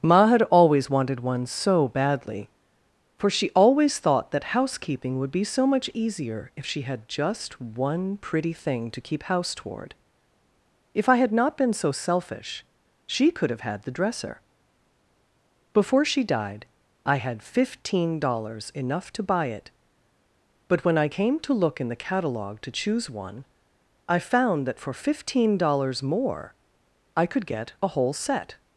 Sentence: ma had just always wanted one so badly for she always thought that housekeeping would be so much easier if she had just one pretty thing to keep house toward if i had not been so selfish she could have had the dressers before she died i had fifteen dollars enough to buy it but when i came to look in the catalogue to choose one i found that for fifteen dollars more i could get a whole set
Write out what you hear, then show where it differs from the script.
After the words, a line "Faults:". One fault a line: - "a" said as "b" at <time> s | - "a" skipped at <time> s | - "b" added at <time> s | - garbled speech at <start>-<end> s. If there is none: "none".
ma had always wanted one so badly for she always thought that housekeeping would be so much easier if she had just one pretty thing to keep house toward if i had not been so selfish she could have had the dresser before she died i had fifteen dollars enough to buy it but when i came to look in the catalogue to choose one i found that for fifteen dollars more i could get a whole set
Faults:
- "just" skipped at 0.4 s
- "dressers" said as "dresser" at 13.9 s